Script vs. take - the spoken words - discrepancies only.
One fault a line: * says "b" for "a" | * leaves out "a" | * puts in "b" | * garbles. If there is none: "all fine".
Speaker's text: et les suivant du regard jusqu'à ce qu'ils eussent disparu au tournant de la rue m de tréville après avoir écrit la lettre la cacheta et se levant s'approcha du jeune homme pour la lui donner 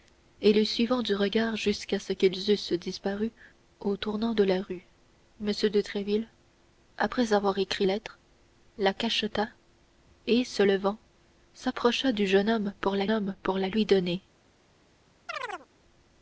* leaves out "la"
* puts in "homme pour la"